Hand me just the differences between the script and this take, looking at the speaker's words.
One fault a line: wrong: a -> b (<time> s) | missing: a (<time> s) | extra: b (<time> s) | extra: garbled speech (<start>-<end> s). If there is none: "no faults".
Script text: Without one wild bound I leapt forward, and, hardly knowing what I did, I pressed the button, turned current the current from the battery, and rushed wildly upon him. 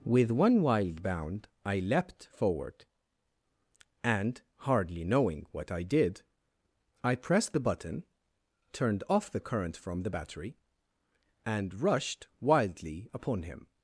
wrong: Without -> With (0.0 s)
wrong: current -> off (9.1 s)